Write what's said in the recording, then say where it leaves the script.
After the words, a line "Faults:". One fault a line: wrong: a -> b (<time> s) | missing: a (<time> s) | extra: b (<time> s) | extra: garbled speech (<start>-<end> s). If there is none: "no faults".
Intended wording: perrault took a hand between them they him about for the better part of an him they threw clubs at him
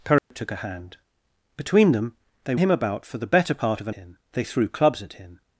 perrault took a hand between them they him about for the better part of an him they threw clubs at him
Faults:
no faults